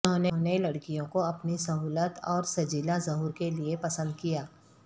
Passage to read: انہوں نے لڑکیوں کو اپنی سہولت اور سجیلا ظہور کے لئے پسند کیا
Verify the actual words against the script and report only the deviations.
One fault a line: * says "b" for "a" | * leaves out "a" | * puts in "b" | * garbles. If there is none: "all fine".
all fine